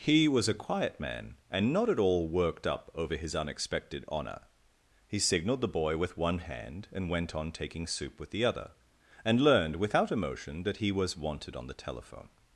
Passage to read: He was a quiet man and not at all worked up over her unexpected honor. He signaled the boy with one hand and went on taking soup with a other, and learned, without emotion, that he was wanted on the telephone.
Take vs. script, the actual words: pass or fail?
fail